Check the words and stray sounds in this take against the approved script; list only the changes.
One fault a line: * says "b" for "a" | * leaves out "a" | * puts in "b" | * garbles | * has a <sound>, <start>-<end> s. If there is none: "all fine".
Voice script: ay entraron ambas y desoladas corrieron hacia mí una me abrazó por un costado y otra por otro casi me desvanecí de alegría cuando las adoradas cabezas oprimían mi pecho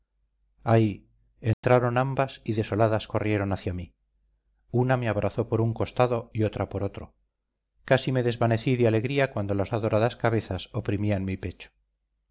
* has a dropout, 1.5-1.6 s